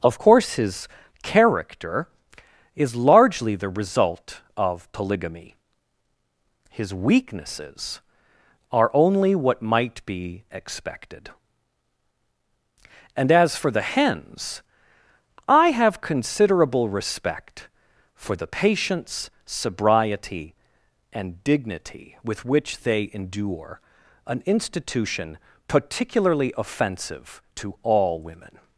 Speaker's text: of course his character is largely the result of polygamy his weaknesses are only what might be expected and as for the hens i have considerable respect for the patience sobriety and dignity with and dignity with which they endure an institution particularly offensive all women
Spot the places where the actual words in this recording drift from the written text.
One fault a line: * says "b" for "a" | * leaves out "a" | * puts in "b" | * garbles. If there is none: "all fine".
* leaves out "and dignity with"
* puts in "to"